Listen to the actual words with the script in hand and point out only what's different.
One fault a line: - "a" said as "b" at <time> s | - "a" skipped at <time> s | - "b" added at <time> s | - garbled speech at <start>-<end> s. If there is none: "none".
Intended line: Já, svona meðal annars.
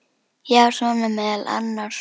none